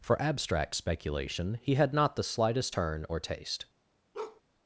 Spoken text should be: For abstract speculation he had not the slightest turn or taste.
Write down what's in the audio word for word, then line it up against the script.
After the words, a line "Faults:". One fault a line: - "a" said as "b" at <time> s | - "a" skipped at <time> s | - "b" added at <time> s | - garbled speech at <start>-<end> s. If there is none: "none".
For abstract speculation he had not the slightest turn or taste.
Faults:
none